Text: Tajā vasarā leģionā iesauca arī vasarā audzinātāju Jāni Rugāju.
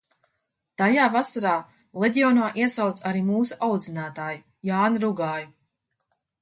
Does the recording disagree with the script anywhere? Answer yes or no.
yes